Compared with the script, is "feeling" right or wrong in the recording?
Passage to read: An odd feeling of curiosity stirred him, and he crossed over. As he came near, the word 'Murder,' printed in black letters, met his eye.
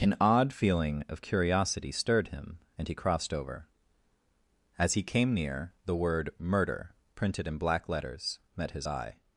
right